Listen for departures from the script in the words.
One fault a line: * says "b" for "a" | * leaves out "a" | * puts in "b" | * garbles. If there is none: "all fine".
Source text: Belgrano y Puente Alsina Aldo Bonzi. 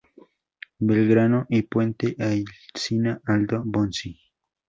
all fine